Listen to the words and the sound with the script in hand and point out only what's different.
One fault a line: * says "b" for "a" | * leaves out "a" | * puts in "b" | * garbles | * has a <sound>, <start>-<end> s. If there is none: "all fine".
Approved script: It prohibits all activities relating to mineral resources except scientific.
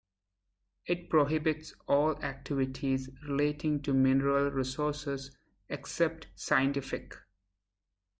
all fine